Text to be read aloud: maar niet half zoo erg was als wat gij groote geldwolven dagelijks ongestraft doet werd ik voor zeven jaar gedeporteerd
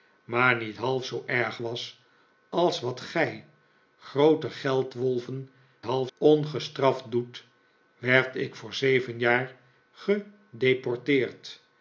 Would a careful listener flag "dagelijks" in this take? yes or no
yes